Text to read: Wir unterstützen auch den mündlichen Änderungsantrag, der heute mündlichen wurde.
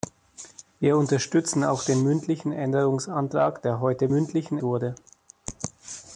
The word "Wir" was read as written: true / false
true